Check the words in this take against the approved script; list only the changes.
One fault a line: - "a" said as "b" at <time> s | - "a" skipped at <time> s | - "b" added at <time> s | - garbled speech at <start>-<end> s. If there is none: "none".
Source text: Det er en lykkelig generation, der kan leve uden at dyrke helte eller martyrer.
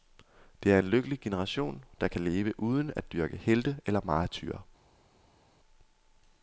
none